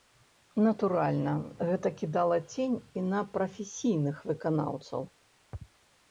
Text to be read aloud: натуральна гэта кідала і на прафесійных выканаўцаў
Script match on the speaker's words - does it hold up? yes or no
no